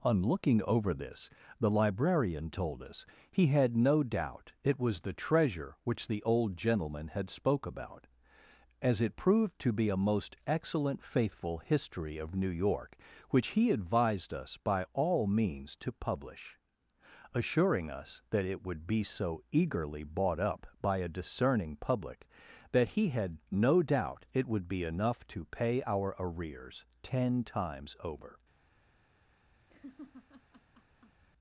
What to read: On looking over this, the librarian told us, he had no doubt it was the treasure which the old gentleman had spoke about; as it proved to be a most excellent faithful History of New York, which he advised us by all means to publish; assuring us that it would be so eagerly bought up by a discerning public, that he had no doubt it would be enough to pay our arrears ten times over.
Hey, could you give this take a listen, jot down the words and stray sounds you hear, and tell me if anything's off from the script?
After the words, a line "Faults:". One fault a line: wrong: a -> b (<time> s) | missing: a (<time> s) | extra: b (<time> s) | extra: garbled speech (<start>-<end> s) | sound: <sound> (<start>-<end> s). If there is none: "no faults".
On looking over this, the librarian told us, he had no doubt it was the treasure which the old gentleman had spoke about; as it proved to be a most excellent faithful History of New York, which he advised us by all means to publish; assuring us that it would be so eagerly bought up by a discerning public, that he had no doubt it would be enough to pay our arrears ten times over.
Faults:
sound: laugh (29.7-31.2 s)